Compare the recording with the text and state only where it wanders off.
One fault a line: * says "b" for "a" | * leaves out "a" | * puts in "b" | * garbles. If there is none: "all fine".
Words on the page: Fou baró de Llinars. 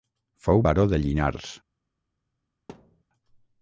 all fine